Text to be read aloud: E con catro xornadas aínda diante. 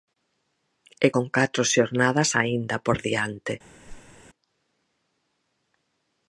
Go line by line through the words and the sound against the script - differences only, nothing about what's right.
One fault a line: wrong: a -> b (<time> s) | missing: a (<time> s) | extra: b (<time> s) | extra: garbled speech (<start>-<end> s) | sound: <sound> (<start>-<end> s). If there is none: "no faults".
extra: por (2.9 s)
sound: whoosh (3.8-4.2 s)